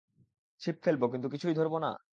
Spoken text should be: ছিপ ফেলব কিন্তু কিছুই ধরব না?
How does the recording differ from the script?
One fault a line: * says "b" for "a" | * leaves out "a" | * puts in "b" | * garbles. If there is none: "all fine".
all fine